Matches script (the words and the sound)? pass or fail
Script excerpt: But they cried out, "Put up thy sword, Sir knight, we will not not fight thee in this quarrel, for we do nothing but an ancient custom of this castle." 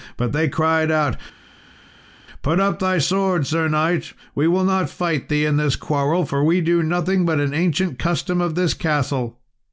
fail